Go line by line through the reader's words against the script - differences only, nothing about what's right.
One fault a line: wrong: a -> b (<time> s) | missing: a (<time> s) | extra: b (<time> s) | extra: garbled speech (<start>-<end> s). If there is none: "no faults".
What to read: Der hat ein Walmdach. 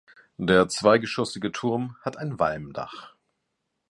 extra: zweigeschossige Turm (0.7 s)